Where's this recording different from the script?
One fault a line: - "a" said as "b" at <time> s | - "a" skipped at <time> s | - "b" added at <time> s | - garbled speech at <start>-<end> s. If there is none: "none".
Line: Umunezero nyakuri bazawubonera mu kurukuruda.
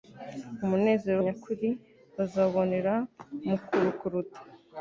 none